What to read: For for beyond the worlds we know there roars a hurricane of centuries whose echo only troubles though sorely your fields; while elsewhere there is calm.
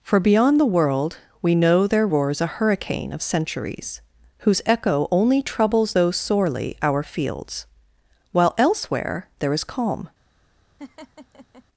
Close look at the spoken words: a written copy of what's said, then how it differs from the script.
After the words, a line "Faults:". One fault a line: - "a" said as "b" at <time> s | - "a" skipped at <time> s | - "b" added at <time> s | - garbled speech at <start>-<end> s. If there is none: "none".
For beyond the world we know there roars a hurricane of centuries whose echo only troubles though sorely our fields; while elsewhere there is calm.
Faults:
- "for" skipped at 0.2 s
- "worlds" said as "world" at 0.7 s
- "your" said as "our" at 6.8 s